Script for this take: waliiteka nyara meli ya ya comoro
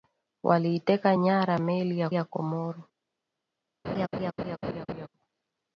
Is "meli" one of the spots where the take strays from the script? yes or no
no